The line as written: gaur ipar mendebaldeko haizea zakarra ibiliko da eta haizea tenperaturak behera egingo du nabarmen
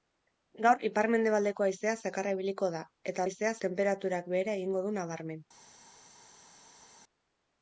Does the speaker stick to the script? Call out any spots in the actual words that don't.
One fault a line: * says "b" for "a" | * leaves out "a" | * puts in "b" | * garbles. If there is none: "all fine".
all fine